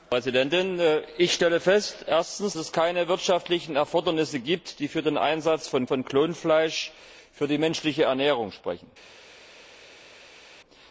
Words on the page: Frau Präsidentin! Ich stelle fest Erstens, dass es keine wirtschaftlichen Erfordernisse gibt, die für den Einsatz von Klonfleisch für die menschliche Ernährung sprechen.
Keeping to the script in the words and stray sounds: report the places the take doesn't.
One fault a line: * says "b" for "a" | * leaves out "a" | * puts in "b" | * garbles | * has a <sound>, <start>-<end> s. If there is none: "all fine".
* leaves out "dass"
* puts in "von"